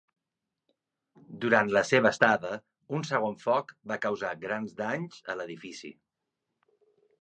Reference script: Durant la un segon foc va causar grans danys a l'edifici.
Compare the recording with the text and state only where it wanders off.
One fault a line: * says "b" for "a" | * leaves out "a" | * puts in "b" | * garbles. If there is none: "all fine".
* puts in "seva estada"